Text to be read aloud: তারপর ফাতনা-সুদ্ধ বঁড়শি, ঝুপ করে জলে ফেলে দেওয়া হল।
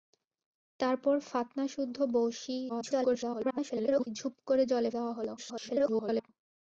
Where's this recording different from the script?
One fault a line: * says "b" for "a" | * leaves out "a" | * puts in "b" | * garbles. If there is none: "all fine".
* garbles
* leaves out "ফেলে"
* garbles